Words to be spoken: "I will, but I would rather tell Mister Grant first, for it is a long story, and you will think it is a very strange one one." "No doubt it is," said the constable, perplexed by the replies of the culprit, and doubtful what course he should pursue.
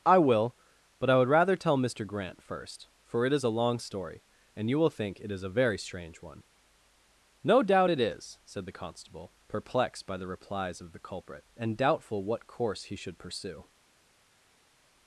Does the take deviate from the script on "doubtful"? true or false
false